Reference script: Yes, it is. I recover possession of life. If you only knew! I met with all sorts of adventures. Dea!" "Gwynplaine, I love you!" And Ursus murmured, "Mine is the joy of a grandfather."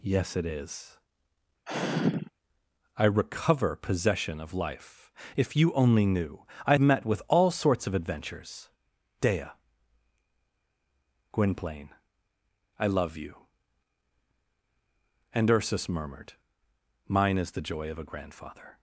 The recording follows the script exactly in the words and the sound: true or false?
false